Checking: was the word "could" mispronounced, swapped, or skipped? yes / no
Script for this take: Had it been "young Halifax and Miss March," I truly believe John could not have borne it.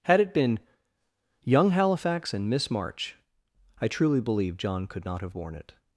no